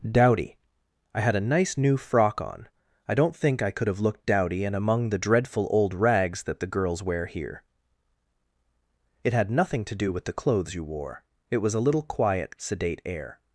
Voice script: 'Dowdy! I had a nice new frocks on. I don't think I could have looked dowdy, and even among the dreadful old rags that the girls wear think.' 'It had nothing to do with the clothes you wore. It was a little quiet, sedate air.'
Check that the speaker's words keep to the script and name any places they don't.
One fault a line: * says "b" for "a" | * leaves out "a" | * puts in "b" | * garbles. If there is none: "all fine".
* says "frock" for "frocks"
* leaves out "even"
* says "here" for "think"